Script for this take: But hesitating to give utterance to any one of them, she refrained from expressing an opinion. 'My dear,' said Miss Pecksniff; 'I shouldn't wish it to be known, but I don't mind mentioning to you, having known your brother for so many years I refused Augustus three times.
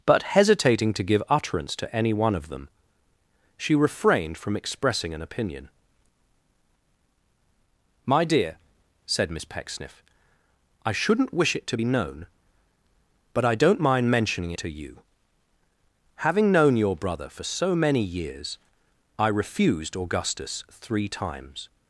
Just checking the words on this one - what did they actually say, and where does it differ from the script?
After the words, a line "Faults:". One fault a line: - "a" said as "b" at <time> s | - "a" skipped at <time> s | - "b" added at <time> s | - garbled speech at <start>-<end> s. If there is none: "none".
But hesitating to give utterance to any one of them, she refrained from expressing an opinion. 'My dear,' said Miss Pecksniff; 'I shouldn't wish it to be known, but I don't mind mentioning to you, having known your brother for so many years I refused Augustus three times.
Faults:
none